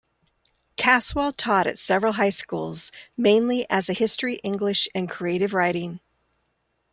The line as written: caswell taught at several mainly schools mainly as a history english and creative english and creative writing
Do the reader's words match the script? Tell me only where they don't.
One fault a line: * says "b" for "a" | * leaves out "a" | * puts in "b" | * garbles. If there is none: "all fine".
* says "high" for "mainly"
* leaves out "english and creative"